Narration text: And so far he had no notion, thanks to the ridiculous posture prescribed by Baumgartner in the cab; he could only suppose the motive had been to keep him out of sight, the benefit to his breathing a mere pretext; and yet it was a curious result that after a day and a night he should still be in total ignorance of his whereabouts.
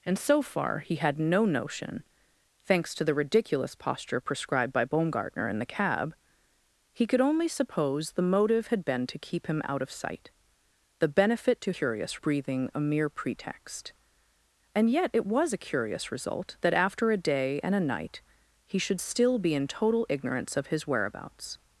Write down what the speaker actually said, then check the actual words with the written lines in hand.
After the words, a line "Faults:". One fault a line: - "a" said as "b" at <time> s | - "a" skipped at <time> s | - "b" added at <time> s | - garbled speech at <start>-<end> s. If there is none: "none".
And so far he had no notion, thanks to the ridiculous posture prescribed by Baumgartner in the cab; he could only suppose the motive had been to keep him out of sight, the benefit to curious breathing a mere pretext; and yet it was a curious result that after a day and a night he should still be in total ignorance of his whereabouts.
Faults:
- "his" said as "curious" at 11.8 s